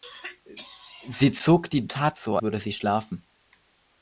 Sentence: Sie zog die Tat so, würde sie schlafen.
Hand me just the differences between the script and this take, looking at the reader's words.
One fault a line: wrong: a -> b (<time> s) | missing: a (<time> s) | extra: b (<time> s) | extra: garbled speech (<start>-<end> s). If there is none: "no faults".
no faults